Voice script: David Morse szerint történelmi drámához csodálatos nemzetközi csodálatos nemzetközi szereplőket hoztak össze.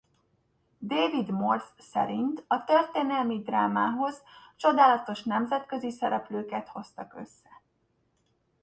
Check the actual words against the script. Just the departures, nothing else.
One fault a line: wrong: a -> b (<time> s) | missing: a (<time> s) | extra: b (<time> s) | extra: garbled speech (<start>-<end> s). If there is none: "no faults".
extra: a (2.5 s)
missing: csodálatos nemzetközi (5.9 s)